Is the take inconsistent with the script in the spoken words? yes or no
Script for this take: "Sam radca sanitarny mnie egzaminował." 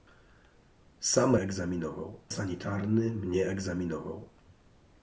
yes